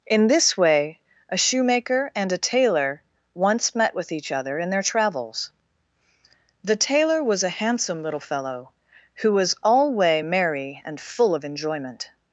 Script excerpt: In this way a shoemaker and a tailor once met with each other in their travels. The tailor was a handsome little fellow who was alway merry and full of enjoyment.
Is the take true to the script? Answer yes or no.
yes